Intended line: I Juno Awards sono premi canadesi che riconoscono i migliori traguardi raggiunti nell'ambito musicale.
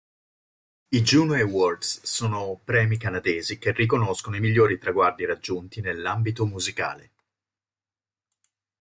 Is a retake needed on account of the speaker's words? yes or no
no